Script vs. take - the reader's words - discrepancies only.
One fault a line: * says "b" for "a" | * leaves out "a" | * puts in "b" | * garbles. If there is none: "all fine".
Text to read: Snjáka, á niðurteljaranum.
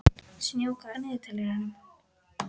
all fine